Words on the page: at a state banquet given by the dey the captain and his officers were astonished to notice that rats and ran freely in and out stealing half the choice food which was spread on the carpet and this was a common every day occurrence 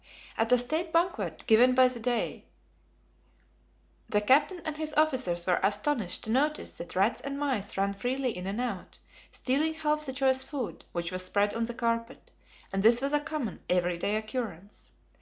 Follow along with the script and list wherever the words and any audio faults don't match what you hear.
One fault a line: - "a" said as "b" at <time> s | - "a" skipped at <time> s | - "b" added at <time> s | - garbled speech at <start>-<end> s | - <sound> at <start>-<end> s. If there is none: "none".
- "mice" added at 7.4 s